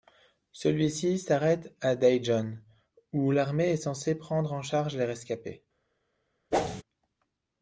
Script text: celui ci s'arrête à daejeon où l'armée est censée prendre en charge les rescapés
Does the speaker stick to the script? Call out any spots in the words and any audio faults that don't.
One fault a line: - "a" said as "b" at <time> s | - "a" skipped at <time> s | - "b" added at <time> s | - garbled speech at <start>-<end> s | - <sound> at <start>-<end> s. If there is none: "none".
- whoosh at 6.5-6.8 s